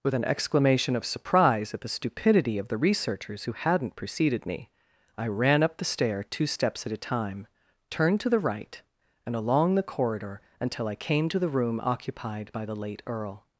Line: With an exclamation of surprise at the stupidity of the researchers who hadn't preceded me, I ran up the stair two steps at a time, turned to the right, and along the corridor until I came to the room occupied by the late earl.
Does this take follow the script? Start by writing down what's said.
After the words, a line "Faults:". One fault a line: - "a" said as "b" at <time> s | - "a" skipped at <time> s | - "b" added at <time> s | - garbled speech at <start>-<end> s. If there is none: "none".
With an exclamation of surprise at the stupidity of the researchers who hadn't preceded me, I ran up the stair two steps at a time, turned to the right, and along the corridor until I came to the room occupied by the late earl.
Faults:
none